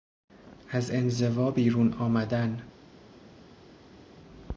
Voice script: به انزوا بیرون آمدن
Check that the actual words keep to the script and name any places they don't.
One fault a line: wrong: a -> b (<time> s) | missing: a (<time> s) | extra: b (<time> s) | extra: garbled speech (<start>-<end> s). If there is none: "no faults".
wrong: به -> از (0.7 s)